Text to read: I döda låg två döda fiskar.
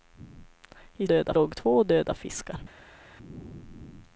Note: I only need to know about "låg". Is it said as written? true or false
true